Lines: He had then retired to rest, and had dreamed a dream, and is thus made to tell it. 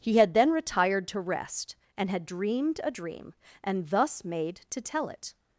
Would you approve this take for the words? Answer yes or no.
no